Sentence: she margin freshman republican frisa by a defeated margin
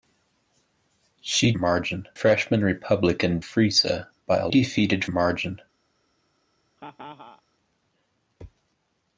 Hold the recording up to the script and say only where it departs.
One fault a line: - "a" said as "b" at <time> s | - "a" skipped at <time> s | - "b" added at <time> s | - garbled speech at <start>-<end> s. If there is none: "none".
none